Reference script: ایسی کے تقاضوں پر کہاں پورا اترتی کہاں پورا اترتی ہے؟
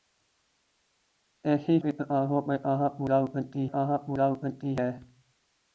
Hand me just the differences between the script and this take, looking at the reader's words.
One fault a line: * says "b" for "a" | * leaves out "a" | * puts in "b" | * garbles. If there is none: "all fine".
all fine